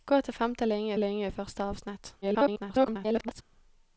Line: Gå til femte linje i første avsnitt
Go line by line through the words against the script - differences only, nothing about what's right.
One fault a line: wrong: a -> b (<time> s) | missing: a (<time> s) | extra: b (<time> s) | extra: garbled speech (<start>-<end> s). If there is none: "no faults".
extra: linje (1.0 s)
extra: garbled speech (2.2-3.4 s)